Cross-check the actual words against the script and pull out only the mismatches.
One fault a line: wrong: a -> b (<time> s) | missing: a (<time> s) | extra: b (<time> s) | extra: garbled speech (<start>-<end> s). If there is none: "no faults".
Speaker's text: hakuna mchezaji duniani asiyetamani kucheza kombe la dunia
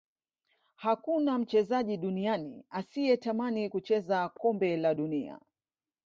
no faults